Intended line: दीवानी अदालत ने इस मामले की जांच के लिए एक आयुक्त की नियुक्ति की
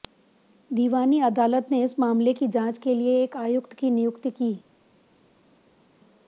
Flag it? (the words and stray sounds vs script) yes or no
no